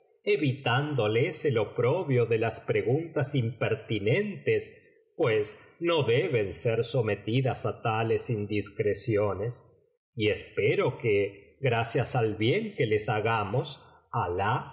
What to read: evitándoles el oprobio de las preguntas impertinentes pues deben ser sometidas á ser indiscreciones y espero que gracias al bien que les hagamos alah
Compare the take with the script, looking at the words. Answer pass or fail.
fail